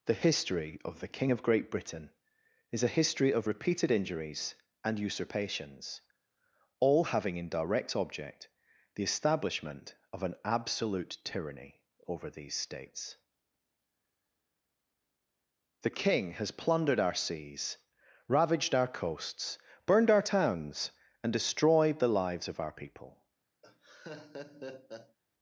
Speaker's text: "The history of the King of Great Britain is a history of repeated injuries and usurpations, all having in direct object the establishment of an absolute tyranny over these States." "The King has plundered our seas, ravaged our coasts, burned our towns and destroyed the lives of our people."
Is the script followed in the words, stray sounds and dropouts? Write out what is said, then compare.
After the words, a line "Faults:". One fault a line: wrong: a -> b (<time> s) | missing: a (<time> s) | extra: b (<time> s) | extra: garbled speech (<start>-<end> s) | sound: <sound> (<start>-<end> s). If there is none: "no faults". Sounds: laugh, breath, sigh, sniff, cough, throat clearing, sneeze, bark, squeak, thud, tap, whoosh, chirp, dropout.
"The history of the King of Great Britain is a history of repeated injuries and usurpations, all having in direct object the establishment of an absolute tyranny over these States." "The King has plundered our seas, ravaged our coasts, burned our towns and destroyed the lives of our people."
Faults:
sound: laugh (23.6-25.2 s)